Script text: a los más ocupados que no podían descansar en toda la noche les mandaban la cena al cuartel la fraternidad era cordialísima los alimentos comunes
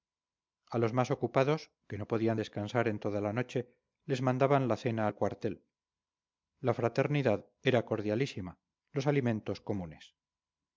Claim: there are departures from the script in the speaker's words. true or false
false